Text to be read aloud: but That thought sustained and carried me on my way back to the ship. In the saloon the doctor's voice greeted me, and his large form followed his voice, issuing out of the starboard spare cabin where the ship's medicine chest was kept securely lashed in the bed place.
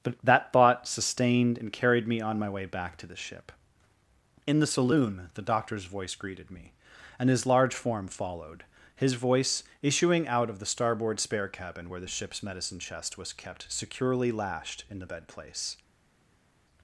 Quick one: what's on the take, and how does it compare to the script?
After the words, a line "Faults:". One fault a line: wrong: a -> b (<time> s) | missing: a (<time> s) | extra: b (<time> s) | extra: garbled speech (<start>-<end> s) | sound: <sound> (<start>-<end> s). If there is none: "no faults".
but That thought sustained and carried me on my way back to the ship. In the saloon the doctor's voice greeted me, and his large form followed his voice, issuing out of the starboard spare cabin where the ship's medicine chest was kept securely lashed in the bed place.
Faults:
no faults